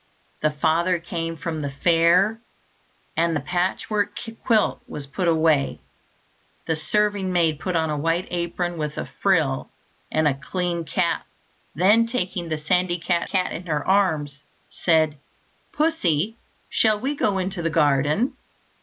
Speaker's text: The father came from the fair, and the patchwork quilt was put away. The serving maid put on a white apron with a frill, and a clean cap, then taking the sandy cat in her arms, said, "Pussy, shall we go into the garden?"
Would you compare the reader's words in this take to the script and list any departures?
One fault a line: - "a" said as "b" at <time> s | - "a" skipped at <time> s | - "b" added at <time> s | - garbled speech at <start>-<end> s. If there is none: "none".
- "cat" added at 13.3 s